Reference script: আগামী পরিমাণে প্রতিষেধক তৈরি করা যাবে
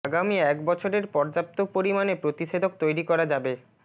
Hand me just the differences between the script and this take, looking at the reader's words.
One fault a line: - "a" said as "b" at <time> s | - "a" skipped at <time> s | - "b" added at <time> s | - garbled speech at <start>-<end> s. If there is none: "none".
- "এক বছরের পর্যাপ্ত" added at 0.4 s